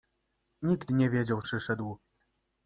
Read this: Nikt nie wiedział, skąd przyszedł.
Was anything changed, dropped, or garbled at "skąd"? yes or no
yes